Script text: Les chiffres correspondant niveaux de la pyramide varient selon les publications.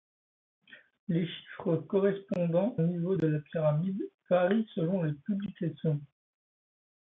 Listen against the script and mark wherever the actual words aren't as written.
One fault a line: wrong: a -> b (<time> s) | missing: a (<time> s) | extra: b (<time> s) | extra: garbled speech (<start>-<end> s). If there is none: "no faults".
no faults